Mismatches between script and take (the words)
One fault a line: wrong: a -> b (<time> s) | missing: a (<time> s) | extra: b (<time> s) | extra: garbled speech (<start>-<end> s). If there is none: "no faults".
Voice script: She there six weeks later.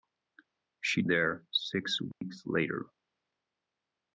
no faults